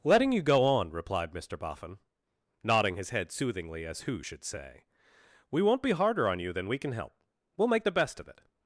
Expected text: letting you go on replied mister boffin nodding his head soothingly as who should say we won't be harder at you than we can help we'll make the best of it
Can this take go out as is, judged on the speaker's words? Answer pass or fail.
fail